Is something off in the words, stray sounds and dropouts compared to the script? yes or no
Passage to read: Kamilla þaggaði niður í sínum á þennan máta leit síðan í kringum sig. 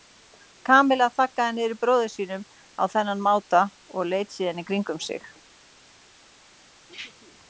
yes